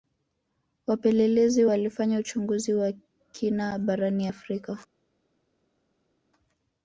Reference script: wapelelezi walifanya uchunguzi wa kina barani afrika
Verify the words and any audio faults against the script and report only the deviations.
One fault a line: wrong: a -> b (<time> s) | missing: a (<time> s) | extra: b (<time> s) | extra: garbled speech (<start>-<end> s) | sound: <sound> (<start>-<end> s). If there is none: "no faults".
no faults